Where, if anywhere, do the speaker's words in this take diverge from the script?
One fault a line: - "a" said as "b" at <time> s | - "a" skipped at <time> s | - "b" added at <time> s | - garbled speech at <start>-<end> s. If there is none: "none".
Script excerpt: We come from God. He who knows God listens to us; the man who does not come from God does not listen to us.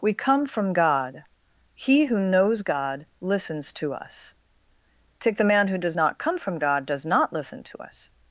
- "take" added at 5.2 s